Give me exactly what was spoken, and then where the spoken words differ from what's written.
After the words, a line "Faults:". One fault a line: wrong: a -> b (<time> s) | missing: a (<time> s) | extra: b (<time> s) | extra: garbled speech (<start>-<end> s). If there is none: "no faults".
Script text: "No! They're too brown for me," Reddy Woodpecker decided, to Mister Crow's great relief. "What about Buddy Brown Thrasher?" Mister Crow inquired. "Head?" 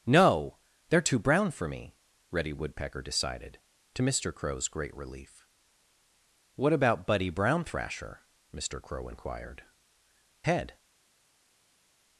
"No! They're too brown for me," Reddy Woodpecker decided, to Mister Crow's great relief. "What about Buddy Brown Thrasher?" Mister Crow inquired. "Head?"
Faults:
no faults